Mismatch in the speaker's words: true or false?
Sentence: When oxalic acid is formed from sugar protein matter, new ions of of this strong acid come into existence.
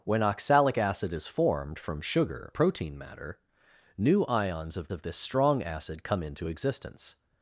false